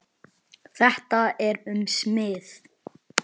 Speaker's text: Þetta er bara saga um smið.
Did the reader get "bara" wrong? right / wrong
wrong